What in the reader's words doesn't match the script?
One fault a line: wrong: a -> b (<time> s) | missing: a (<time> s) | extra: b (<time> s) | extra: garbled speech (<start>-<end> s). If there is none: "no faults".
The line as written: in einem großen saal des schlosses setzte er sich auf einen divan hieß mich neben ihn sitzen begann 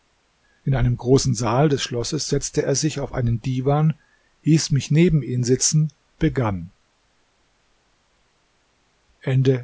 no faults